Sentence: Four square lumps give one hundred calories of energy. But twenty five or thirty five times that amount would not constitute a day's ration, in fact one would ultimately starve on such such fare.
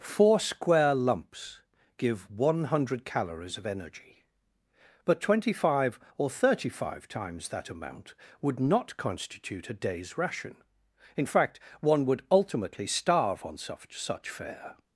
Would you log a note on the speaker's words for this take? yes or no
no